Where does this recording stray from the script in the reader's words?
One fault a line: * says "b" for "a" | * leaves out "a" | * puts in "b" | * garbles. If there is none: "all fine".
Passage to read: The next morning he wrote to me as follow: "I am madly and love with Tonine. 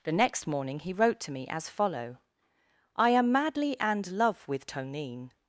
all fine